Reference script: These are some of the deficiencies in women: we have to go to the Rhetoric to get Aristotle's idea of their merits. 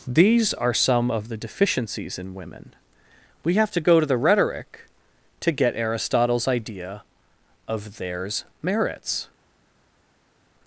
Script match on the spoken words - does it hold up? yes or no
no